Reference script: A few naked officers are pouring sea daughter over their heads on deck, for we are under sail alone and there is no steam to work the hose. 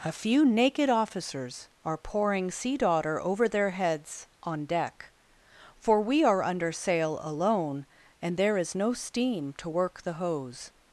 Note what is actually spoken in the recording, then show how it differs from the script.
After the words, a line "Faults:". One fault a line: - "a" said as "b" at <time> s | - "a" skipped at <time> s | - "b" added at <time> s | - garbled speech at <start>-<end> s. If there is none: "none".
A few naked officers are pouring sea daughter over their heads on deck, for we are under sail alone and there is no steam to work the hose.
Faults:
none